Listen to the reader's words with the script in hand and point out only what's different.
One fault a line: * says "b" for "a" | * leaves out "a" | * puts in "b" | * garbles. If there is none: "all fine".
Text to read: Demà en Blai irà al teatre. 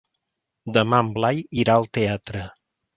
all fine